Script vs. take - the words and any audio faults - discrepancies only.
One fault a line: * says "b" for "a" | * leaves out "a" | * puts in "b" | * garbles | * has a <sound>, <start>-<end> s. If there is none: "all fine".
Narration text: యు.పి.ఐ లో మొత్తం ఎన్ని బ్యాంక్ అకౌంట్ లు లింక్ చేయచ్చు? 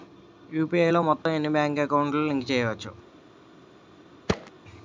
* has a dropout, 1.2-1.3 s
* has a thud, 4.3-4.5 s